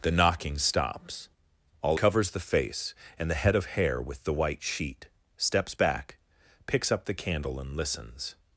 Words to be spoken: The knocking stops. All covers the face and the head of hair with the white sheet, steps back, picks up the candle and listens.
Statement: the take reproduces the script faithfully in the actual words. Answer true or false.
true